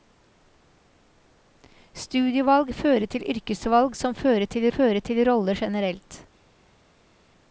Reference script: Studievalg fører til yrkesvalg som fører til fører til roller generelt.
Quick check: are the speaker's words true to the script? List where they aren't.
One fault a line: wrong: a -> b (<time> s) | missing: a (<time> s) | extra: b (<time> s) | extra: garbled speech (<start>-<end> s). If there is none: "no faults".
no faults